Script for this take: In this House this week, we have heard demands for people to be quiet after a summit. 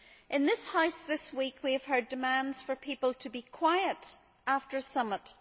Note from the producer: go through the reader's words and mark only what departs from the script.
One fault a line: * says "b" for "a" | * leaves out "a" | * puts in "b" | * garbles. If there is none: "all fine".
all fine